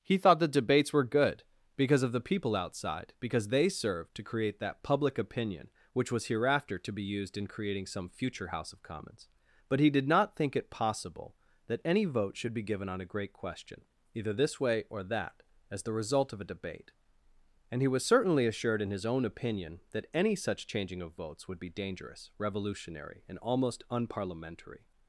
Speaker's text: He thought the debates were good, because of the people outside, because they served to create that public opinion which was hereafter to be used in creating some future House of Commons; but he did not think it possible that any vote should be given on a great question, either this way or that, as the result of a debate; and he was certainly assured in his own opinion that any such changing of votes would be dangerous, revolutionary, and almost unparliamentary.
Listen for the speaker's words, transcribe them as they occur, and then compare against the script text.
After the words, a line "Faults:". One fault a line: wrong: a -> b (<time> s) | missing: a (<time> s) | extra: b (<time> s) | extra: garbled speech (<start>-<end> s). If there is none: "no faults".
He thought the debates were good, because of the people outside, because they served to create that public opinion which was hereafter to be used in creating some future House of Commons; but he did not think it possible that any vote should be given on a great question, either this way or that, as the result of a debate; and he was certainly assured in his own opinion that any such changing of votes would be dangerous, revolutionary, and almost unparliamentary.
Faults:
no faults